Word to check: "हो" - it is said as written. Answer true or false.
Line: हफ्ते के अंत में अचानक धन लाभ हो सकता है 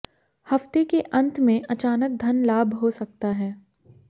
true